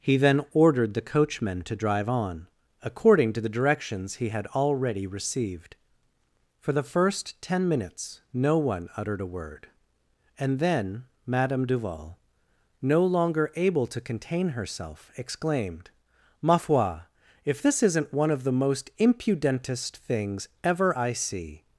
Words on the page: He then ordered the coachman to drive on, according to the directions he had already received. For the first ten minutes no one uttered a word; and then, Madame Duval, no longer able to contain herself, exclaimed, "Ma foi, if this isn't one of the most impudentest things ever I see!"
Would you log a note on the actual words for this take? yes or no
no